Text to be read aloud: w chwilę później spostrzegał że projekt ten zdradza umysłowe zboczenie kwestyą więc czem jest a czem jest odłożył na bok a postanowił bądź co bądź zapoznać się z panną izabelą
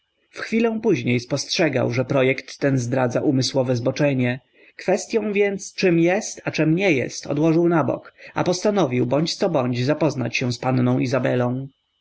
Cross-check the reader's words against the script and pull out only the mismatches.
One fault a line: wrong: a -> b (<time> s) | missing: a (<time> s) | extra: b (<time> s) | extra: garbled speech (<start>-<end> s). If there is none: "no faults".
extra: nie (6.7 s)